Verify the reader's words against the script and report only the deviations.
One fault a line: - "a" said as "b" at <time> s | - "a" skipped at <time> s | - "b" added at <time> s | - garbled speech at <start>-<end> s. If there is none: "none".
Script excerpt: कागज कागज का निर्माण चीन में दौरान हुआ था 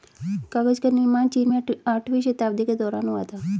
- "कागज" skipped at 0.8 s
- "आठवीं शताब्दी के" added at 1.9 s